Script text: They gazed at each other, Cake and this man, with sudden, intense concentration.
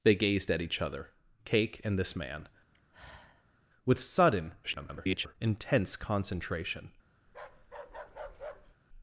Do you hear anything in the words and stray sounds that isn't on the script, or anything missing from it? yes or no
yes